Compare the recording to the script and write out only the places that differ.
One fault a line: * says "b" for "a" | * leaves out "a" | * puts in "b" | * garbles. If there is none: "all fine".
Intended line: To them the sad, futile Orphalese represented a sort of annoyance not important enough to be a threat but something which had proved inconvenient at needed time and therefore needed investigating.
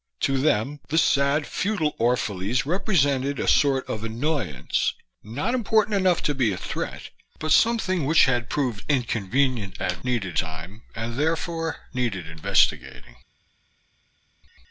all fine